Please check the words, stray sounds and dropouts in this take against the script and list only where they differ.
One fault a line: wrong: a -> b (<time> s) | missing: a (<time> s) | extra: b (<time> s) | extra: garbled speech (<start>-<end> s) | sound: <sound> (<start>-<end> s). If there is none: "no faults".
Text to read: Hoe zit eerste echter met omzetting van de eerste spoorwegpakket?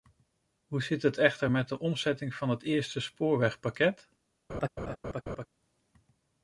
wrong: eerste -> het (1.0 s)
extra: de (1.7 s)
wrong: de -> het (2.5 s)
sound: laugh (4.5-5.5 s)